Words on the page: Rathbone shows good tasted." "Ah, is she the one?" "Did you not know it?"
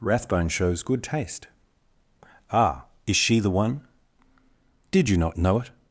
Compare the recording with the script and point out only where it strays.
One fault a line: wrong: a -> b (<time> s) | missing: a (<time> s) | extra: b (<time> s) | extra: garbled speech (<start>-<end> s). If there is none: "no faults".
wrong: tasted -> taste (1.0 s)